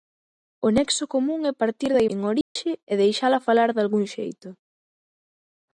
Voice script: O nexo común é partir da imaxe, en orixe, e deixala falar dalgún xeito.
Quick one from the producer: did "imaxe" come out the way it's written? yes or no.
no